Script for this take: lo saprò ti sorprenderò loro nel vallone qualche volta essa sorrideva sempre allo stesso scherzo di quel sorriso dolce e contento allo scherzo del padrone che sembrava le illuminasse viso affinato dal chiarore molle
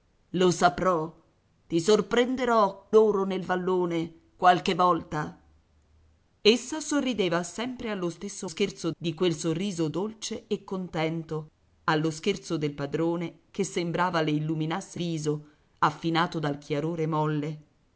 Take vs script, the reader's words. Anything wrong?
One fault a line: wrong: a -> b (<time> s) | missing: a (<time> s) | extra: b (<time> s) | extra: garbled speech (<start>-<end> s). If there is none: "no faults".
no faults